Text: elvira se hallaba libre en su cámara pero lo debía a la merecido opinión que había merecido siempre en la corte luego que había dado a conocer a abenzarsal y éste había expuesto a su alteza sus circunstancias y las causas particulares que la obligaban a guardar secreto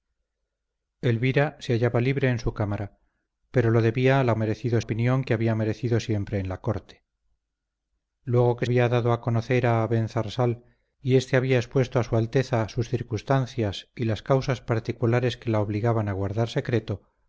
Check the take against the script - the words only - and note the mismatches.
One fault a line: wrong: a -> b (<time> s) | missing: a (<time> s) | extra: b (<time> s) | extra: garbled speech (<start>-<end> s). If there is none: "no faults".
no faults